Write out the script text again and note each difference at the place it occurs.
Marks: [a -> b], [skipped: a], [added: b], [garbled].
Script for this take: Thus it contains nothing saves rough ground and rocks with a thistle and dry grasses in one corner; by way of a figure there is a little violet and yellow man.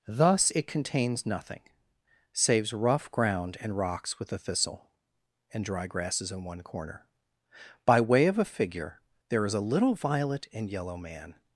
Thus it contains nothing saves rough ground and rocks with a thistle and dry grasses in one corner; by way of a figure there is a little violet and yellow man.